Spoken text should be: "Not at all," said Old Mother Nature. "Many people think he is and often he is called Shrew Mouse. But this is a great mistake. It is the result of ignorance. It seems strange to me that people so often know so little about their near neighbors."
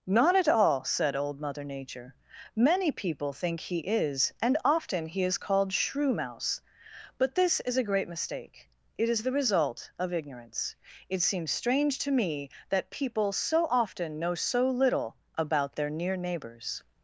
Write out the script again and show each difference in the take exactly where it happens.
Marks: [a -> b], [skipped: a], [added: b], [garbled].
"Not at all," said Old Mother Nature. "Many people think he is and often he is called Shrew Mouse. But this is a great mistake. It is the result of ignorance. It seems strange to me that people so often know so little about their near neighbors."